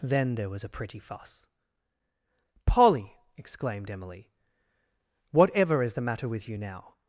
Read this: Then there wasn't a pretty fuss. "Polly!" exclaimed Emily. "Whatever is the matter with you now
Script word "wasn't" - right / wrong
wrong